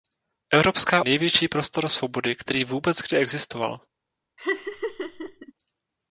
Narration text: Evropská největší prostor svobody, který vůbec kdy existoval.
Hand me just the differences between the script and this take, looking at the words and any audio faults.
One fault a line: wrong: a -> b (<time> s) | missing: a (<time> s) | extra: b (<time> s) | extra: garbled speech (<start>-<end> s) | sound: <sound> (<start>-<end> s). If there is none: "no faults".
sound: laugh (4.4-5.5 s)